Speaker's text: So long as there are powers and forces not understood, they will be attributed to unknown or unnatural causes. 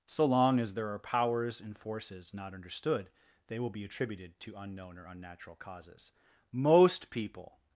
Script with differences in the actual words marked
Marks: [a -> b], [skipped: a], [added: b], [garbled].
So long as there are powers and forces not understood, they will be attributed to unknown or unnatural causes. [added: Most people]